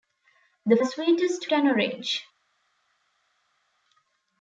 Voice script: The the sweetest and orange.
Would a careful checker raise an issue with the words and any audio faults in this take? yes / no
no